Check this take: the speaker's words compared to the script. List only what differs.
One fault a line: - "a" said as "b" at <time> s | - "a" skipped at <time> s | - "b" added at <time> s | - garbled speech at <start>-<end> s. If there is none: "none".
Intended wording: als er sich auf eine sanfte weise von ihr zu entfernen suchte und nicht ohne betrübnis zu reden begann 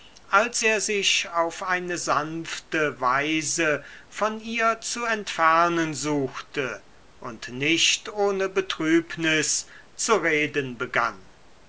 none